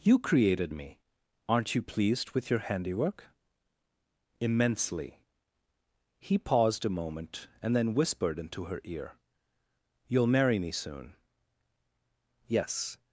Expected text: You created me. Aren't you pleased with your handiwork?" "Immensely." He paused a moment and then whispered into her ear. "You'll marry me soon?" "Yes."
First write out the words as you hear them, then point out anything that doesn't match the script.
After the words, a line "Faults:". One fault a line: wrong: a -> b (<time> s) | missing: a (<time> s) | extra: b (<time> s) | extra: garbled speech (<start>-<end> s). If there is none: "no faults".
You created me. Aren't you pleased with your handiwork?" "Immensely." He paused a moment and then whispered into her ear. "You'll marry me soon?" "Yes."
Faults:
no faults